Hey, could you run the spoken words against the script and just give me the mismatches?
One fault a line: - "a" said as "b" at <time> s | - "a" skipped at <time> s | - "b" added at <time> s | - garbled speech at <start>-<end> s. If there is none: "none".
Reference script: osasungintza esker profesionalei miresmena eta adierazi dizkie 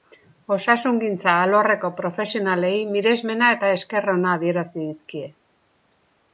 - "esker" said as "alorreko" at 1.4 s
- "esker ona" added at 3.8 s